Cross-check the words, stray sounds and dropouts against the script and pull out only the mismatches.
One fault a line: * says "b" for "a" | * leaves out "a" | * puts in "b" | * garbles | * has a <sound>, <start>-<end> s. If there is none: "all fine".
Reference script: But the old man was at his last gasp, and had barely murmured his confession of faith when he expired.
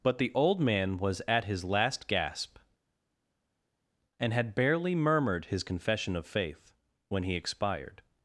all fine